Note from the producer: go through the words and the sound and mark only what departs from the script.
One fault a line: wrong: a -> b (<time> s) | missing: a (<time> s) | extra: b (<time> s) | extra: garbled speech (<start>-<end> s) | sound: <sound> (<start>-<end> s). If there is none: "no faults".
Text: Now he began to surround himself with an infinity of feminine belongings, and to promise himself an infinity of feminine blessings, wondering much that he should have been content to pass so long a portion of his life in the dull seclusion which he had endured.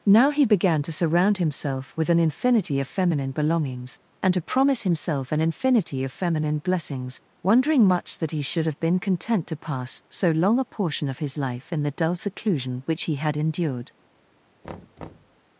sound: thud (14.6-15.4 s)